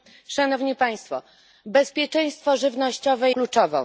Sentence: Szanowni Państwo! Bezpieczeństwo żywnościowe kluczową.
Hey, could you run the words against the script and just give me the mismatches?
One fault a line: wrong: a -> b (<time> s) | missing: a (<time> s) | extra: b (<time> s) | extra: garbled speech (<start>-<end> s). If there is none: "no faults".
no faults